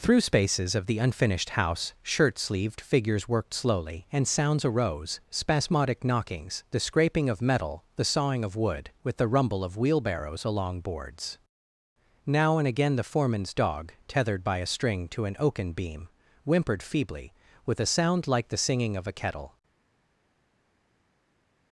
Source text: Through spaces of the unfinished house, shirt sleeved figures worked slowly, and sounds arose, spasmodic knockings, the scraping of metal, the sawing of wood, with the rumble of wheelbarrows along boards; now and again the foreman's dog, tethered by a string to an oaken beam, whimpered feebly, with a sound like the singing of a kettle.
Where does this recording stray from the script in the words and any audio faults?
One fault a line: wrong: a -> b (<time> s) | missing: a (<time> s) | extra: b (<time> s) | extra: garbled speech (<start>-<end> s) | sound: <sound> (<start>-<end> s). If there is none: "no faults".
no faults